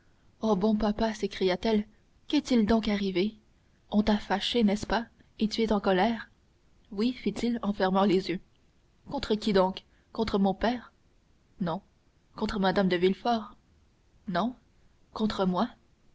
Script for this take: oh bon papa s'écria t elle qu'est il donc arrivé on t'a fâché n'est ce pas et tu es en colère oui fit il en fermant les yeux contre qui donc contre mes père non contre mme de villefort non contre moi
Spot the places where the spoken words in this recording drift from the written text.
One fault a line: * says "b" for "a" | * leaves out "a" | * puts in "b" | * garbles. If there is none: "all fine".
* says "mon" for "mes"